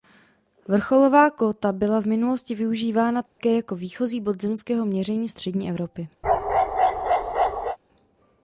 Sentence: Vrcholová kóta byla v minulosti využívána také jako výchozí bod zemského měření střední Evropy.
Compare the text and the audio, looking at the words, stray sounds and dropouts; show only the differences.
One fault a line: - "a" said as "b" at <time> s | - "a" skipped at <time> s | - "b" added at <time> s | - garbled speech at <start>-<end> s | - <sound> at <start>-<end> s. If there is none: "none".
- dropout at 3.3-3.4 s
- bark at 6.2-7.8 s